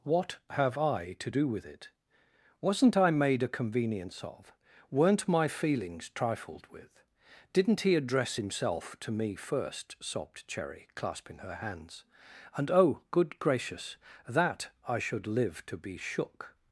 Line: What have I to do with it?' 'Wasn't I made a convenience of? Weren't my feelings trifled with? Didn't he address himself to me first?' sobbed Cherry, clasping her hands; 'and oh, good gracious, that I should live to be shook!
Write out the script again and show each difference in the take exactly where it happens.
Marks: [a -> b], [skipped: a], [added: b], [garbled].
What have I to do with it?' 'Wasn't I made a convenience of? Weren't my feelings trifled with? Didn't he address himself to me first?' sobbed Cherry, clasping her hands; 'and oh, good gracious, that I should live to be shook!